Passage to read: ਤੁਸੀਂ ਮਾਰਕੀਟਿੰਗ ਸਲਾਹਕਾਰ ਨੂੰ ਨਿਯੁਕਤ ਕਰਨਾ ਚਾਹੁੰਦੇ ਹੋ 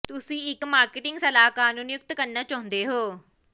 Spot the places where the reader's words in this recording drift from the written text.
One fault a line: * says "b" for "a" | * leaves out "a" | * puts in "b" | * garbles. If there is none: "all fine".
* puts in "ਇੱਕ"